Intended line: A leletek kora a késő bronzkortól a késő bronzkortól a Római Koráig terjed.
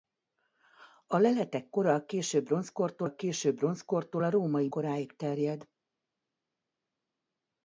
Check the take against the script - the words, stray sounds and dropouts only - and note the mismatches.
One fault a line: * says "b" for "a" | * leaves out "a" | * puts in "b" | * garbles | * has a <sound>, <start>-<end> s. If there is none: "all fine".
all fine